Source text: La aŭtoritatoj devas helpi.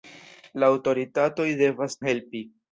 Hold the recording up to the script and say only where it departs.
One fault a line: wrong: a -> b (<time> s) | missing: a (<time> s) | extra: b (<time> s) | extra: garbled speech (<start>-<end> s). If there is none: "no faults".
no faults